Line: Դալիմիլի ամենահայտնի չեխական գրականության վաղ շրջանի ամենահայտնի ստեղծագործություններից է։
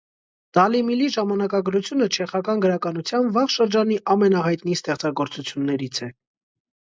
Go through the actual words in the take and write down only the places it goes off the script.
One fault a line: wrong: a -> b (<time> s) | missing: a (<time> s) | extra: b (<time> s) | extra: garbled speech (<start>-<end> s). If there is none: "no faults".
wrong: ամենահայտնի -> ժամանակագրությունը (1.1 s)